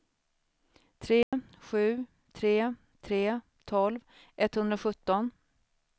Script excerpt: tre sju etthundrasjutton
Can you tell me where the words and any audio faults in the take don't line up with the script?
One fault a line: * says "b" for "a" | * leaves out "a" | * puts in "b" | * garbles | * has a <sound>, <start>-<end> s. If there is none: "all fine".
* has a dropout, 1.2-1.3 s
* puts in "tre tre tolv"